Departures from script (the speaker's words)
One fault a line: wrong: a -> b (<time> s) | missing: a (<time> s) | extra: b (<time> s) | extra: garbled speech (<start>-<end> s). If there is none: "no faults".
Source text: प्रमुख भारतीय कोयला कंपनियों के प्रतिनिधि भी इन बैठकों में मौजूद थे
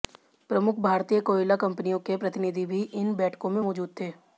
no faults